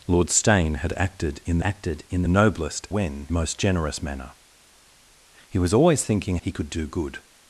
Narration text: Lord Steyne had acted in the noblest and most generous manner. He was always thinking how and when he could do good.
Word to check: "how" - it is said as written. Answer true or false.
false